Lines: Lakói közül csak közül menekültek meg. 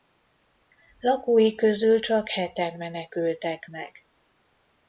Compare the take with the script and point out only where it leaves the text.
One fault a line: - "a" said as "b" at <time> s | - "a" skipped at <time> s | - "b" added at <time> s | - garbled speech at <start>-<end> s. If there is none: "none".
- "közül" said as "heten" at 2.3 s